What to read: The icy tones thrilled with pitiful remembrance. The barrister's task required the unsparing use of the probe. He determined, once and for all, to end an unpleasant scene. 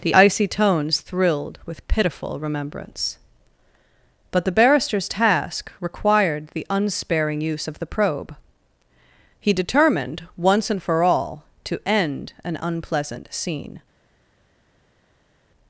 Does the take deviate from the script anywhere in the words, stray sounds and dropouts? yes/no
yes